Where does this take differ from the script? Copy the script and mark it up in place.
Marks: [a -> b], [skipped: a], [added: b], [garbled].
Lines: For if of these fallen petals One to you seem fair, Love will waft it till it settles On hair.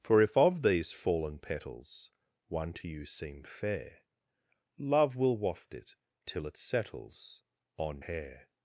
For if of these fallen petals One to you seem fair, Love will waft it till it settles On hair.